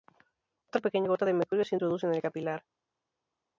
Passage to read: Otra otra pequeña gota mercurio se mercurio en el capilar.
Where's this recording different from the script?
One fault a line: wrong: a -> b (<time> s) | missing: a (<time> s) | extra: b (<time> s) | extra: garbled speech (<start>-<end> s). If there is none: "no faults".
missing: otra (0.8 s)
extra: de (1.2 s)
wrong: mercurio -> introduce (1.7 s)